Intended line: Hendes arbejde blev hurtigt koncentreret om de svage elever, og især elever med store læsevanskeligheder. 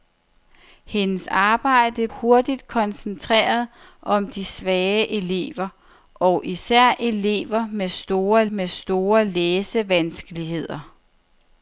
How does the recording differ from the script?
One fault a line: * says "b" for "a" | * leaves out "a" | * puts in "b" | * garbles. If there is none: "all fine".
* leaves out "blev"
* puts in "med store"